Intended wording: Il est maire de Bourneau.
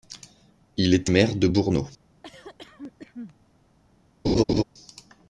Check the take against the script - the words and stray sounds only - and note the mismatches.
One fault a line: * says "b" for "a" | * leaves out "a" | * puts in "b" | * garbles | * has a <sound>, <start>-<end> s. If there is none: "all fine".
* has a cough, 2.2-3.4 s
* has a laugh, 4.2-4.6 s